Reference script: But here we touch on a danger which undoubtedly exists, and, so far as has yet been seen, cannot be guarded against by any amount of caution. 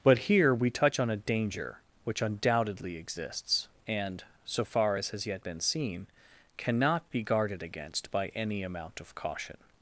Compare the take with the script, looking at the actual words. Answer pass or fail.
pass